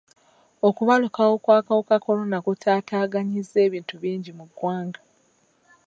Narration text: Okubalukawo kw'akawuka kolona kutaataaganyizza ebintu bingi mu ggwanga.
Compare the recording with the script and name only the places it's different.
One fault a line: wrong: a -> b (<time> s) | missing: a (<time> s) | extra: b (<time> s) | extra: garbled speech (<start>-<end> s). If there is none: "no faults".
no faults